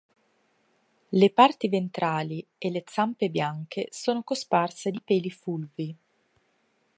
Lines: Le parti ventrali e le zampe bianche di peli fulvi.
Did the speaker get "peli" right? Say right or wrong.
right